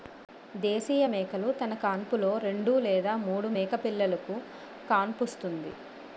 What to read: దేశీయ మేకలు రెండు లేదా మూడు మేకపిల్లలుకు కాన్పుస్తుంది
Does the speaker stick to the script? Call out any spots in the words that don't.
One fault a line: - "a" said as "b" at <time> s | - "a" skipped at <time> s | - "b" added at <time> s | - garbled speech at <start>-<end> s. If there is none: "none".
- "తన కాన్పులో" added at 1.6 s